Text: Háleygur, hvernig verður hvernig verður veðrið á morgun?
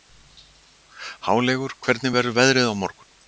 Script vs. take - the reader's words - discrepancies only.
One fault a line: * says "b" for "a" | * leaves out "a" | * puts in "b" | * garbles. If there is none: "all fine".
* leaves out "hvernig verður"